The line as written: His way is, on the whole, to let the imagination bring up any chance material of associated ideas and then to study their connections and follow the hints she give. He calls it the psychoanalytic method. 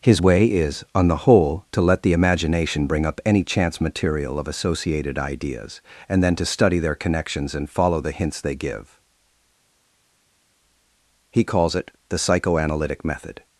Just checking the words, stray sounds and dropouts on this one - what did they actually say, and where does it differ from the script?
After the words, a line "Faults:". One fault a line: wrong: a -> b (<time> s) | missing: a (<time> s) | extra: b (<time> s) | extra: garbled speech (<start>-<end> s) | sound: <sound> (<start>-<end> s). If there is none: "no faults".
His way is, on the whole, to let the imagination bring up any chance material of associated ideas and then to study their connections and follow the hints they give. He calls it the psychoanalytic method.
Faults:
wrong: she -> they (8.4 s)